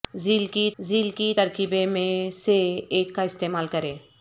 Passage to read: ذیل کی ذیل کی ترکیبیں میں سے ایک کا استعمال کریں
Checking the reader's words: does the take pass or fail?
pass